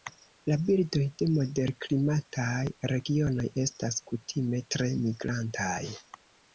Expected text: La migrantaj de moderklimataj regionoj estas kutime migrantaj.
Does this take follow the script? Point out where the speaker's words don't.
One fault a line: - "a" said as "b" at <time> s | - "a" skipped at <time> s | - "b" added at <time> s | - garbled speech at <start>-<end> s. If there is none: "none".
- "migrantaj" said as "birdoj" at 0.7 s
- "tre" added at 4.8 s